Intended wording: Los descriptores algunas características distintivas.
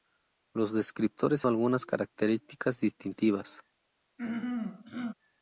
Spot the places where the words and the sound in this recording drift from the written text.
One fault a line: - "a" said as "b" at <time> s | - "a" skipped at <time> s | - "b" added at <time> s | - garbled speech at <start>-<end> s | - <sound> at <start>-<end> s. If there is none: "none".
- throat clearing at 4.2-5.1 s